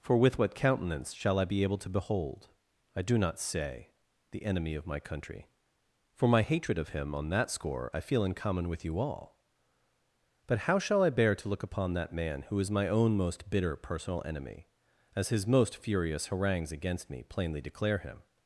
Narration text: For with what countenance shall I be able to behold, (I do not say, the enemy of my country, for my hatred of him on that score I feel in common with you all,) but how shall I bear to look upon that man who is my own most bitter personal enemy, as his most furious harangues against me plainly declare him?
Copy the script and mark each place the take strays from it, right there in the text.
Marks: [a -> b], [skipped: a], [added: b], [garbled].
For with what countenance shall I be able to behold, (I do not say, the enemy of my country, for my hatred of him on that score I feel in common with you all,) but how shall I bear to look upon that man who is my own most bitter personal enemy, as his most furious harangues against me plainly declare him?